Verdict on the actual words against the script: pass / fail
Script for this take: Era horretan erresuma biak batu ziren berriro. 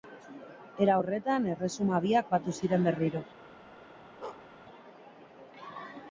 pass